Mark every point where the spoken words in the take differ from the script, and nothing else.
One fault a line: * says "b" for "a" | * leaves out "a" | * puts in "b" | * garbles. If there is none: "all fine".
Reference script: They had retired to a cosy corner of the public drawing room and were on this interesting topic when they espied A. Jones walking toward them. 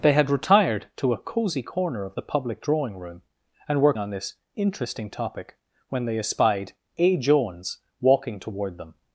all fine